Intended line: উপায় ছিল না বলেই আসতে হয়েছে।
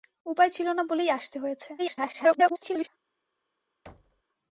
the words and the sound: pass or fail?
fail